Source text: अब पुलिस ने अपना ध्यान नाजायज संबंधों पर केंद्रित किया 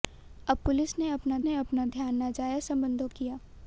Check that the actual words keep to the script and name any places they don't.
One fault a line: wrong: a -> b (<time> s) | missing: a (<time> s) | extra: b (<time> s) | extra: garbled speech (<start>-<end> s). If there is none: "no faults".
extra: ने अपना (1.4 s)
missing: पर केंद्रित (3.1 s)